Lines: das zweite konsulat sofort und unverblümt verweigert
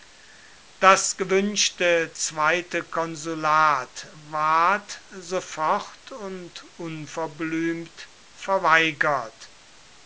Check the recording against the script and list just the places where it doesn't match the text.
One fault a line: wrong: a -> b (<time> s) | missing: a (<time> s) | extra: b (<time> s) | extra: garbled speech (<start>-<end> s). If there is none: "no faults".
extra: gewünschte (1.2 s)
extra: ward (4.1 s)